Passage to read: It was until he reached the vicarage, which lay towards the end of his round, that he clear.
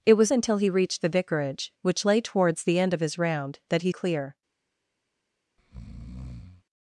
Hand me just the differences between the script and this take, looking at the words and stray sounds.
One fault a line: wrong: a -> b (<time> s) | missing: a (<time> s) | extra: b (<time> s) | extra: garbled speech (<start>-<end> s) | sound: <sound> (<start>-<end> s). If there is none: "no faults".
sound: breath (5.6-6.6 s)